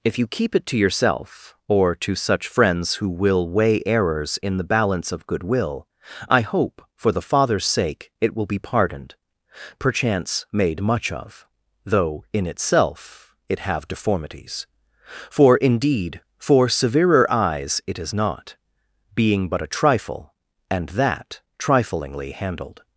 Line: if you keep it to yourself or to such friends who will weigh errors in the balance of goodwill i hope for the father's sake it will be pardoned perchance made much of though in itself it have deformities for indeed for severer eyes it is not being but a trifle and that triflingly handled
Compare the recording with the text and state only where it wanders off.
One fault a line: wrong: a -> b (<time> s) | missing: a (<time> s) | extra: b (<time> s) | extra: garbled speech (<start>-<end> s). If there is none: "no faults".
no faults